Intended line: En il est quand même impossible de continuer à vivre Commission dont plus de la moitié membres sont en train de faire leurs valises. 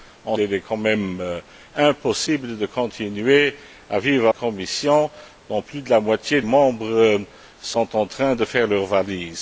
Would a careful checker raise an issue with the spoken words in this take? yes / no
no